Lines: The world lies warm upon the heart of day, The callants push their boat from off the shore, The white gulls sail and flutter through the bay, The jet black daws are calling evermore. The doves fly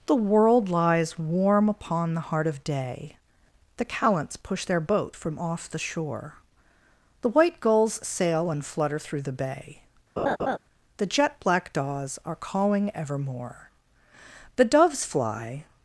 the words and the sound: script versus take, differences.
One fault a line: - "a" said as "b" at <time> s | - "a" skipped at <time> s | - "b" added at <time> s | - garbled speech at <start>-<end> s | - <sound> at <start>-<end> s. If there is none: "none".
- laugh at 10.2-10.6 s